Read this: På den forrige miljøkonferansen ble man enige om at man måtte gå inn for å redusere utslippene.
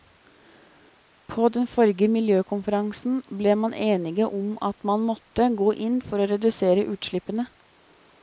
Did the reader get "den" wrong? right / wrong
right